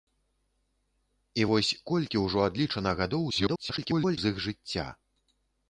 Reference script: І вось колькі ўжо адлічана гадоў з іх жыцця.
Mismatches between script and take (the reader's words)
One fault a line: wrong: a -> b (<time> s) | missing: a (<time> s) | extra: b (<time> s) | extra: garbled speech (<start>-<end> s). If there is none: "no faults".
extra: garbled speech (3.3-4.2 s)